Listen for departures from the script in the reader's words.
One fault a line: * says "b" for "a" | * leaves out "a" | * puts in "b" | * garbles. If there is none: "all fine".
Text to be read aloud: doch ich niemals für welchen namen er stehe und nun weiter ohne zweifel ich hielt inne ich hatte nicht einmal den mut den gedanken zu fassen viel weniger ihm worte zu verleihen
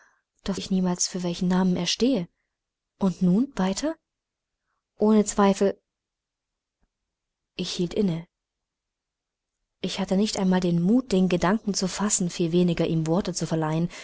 all fine